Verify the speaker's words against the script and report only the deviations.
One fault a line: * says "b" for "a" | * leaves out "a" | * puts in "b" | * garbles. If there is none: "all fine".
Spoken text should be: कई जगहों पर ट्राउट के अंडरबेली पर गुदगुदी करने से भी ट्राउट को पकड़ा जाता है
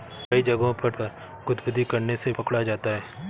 * leaves out "ट्राउट के अंडरबेली"
* leaves out "भी ट्राउट को"